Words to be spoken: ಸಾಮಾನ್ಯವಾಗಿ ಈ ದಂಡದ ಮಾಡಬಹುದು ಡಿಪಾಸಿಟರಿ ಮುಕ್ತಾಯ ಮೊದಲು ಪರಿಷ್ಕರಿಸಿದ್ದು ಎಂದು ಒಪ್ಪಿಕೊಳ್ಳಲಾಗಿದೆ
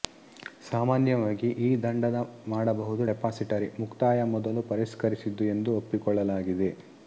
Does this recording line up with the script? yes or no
yes